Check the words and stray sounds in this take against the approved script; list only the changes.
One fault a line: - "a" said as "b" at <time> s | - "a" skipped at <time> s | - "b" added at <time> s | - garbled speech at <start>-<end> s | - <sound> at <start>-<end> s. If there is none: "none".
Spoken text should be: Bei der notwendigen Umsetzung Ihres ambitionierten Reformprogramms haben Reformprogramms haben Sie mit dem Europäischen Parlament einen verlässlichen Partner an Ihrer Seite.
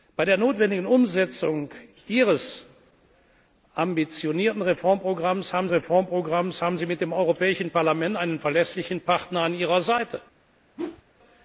- whoosh at 10.8-11.0 s